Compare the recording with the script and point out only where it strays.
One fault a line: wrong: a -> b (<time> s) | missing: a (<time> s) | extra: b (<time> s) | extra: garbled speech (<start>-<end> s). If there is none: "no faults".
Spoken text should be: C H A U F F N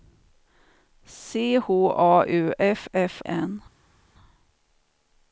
no faults